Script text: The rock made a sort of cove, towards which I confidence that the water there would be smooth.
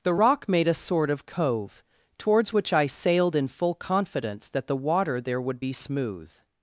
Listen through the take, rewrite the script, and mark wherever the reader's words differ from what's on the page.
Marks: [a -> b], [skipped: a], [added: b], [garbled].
The rock made a sort of cove, towards which I [added: sailed in full] confidence that the water there would be smooth.